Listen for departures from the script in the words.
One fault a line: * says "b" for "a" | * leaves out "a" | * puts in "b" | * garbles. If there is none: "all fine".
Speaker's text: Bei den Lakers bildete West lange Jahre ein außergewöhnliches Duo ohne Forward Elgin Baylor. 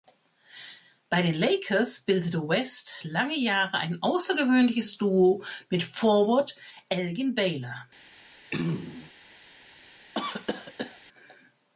* says "mit" for "ohne"